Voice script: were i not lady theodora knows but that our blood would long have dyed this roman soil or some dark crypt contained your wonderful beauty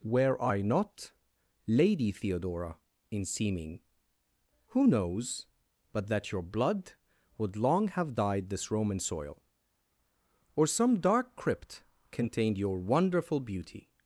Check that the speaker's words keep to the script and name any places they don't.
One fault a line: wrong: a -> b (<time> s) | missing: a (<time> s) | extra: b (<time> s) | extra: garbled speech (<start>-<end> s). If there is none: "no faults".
extra: in seeming who (3.1 s)
wrong: our -> your (6.3 s)